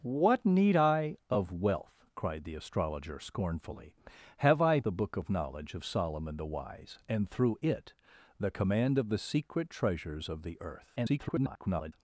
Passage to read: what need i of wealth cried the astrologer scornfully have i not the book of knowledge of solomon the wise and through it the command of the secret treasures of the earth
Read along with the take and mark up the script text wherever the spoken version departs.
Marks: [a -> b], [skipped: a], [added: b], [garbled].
what need i of wealth cried the astrologer scornfully have i [skipped: not] the book of knowledge of solomon the wise and through it the command of the secret treasures of the earth [garbled]